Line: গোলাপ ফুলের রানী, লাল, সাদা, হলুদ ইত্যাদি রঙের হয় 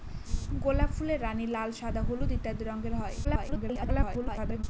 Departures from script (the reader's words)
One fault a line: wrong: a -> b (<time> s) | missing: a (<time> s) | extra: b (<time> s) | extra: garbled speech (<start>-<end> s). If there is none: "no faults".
extra: garbled speech (3.2-4.6 s)